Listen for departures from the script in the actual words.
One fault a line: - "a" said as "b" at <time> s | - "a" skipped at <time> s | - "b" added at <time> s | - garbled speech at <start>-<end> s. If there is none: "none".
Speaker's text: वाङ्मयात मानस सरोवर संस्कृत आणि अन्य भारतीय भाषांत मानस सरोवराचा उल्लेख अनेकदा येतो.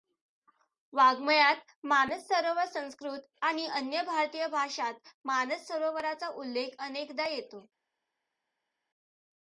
none